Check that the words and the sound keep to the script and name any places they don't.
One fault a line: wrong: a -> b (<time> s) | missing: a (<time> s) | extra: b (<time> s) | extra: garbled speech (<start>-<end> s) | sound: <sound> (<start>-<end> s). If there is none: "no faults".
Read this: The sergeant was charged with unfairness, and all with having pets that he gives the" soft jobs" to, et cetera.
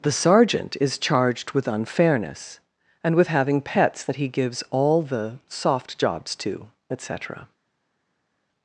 wrong: was -> is (0.8 s)
missing: all (3.1 s)
extra: all (4.7 s)